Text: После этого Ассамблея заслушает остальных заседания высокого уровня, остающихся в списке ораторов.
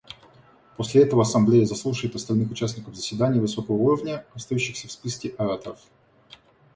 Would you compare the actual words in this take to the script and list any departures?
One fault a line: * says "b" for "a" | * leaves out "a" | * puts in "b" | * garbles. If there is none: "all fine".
* puts in "участников"